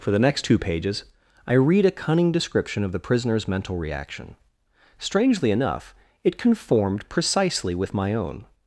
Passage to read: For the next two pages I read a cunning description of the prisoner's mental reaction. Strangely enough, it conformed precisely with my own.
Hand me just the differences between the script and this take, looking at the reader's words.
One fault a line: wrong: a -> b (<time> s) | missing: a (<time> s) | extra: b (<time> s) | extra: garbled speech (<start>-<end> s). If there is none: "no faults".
no faults